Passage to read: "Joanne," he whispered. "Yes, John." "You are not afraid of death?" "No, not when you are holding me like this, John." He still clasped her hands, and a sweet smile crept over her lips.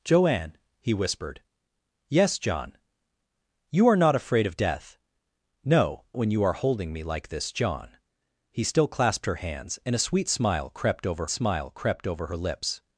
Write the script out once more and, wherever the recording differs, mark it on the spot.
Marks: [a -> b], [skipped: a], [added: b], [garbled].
"Joanne," he whispered. "Yes, John." "You are not afraid of death?" "No, [skipped: not] when you are holding me like this, John." He still clasped her hands, and a sweet smile crept over [added: smile crept over] her lips.